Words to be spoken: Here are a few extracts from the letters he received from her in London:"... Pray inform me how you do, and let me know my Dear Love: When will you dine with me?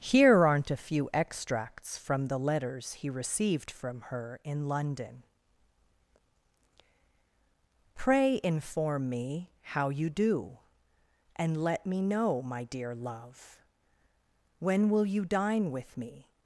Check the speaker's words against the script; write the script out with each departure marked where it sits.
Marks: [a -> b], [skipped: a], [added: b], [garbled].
Here [are -> aren't] a few extracts from the letters he received from her in London:"... Pray inform me how you do, and let me know my Dear Love: When will you dine with me?